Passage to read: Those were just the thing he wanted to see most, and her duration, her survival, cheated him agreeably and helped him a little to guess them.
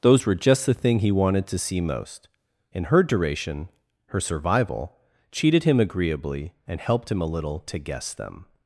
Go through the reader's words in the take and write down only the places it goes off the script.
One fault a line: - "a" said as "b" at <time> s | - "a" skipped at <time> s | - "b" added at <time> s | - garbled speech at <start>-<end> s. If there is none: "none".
none